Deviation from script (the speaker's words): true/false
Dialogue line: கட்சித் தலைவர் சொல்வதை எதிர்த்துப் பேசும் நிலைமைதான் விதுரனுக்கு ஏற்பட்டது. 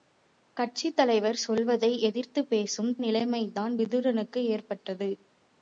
false